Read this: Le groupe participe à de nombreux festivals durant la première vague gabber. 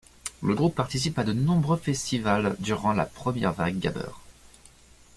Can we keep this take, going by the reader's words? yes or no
yes